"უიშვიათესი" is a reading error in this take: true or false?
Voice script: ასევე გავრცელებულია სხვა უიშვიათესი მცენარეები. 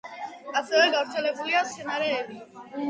true